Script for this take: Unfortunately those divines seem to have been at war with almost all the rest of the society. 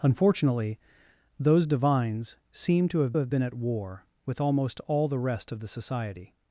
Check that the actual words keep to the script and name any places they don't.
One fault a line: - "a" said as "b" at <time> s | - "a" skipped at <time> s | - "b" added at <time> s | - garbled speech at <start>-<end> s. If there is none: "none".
- "have" added at 3.2 s